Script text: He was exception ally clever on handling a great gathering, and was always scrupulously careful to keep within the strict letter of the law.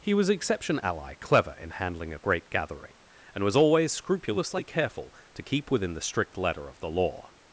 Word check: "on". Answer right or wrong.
wrong